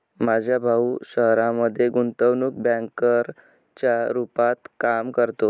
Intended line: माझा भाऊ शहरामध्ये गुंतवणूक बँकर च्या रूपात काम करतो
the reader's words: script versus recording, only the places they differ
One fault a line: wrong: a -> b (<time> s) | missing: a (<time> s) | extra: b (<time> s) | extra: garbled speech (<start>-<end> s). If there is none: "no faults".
no faults